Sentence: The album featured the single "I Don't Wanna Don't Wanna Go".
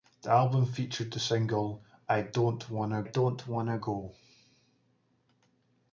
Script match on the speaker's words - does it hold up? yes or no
yes